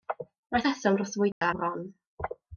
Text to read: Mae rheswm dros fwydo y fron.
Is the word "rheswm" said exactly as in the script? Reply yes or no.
yes